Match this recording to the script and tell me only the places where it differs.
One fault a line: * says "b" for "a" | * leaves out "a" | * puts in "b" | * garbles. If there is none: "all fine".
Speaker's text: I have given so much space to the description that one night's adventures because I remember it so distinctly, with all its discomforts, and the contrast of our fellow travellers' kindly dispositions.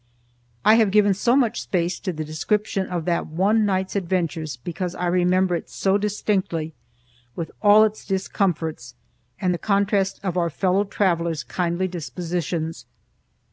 * puts in "of"